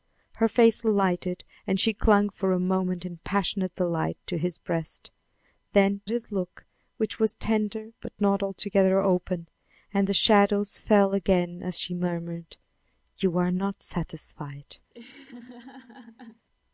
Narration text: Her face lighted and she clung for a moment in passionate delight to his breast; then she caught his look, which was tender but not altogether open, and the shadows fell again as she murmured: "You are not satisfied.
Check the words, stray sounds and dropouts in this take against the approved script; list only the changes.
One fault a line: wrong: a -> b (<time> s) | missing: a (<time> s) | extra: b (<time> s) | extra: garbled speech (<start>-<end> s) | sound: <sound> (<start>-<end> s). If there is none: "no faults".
missing: she caught (6.0 s)
sound: laugh (14.9-16.5 s)